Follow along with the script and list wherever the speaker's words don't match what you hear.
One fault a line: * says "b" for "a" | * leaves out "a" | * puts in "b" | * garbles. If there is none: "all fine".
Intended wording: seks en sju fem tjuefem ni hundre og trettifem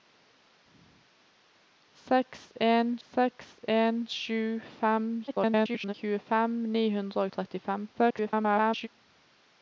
* puts in "seks en"
* garbles
* garbles